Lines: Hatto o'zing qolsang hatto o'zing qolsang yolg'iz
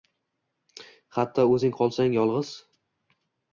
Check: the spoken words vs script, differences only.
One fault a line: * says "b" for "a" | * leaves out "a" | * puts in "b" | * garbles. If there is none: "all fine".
* leaves out "hatto o'zing qolsang"